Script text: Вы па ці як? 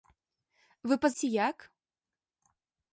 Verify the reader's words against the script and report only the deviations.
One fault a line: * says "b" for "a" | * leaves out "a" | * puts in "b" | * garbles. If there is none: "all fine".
all fine